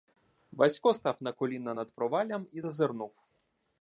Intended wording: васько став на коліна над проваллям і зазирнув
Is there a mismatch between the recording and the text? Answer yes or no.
no